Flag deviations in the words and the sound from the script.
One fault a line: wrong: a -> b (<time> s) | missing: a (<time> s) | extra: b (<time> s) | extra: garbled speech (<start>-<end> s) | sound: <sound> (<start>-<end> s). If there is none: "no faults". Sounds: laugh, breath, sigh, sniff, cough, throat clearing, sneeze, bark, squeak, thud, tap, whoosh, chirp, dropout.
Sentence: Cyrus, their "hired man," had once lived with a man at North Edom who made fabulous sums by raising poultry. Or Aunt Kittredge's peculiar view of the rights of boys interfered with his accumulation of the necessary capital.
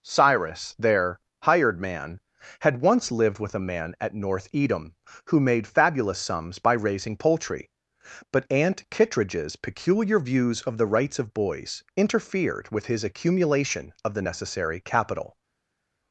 wrong: Or -> But (8.3 s)
wrong: view -> views (10.2 s)